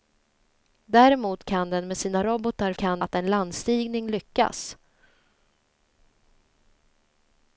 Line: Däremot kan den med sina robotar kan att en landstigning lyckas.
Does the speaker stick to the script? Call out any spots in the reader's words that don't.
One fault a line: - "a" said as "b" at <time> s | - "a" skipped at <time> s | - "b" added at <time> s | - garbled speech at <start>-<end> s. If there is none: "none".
none